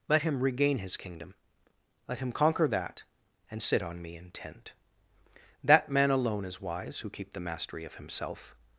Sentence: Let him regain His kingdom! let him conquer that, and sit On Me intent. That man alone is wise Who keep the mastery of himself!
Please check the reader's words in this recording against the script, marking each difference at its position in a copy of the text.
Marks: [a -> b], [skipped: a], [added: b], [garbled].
Let him regain His kingdom! let him conquer that, and sit On Me intent. That man alone is wise Who keep the mastery of himself!